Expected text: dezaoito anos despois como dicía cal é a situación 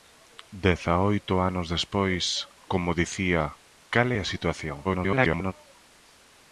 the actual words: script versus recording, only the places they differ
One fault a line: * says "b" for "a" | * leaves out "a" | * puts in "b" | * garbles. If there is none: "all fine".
* garbles